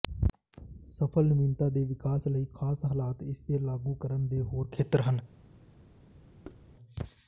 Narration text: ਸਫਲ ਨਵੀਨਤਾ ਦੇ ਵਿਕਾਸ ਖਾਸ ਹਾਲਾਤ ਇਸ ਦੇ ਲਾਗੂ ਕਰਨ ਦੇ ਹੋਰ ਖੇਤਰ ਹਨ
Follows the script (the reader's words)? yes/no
no